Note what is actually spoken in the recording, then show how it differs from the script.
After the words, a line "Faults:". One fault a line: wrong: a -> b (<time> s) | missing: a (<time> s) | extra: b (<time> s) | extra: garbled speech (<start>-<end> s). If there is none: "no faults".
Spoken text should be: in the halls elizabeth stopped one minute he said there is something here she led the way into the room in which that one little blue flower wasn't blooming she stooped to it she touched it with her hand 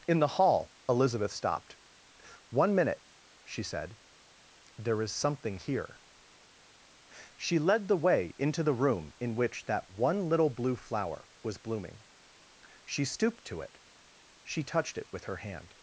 in the hall elizabeth stopped one minute she said there is something here she led the way into the room in which that one little blue flower was blooming she stooped to it she touched it with her hand
Faults:
wrong: halls -> hall (0.3 s)
wrong: he -> she (3.4 s)
wrong: wasn't -> was (11.4 s)